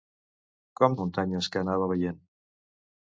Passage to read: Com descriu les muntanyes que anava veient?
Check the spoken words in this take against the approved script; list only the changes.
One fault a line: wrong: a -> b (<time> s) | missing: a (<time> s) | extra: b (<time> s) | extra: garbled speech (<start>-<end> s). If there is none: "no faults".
missing: descriu les (0.9 s)